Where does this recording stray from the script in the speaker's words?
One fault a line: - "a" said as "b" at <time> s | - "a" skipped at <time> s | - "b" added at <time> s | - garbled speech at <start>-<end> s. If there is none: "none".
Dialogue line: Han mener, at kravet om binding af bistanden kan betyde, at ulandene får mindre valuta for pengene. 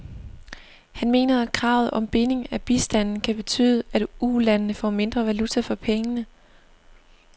none